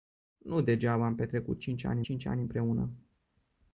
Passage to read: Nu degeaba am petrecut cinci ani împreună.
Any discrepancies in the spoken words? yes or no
yes